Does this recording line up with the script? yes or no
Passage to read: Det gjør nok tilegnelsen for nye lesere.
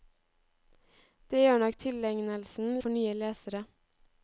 yes